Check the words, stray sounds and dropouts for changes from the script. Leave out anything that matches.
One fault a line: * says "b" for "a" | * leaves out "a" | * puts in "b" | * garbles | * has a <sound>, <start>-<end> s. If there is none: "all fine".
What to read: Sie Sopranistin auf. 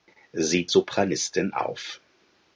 all fine